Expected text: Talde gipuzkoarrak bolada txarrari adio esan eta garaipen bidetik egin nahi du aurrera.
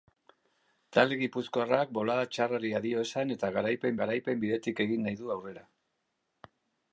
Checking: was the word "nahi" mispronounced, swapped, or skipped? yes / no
no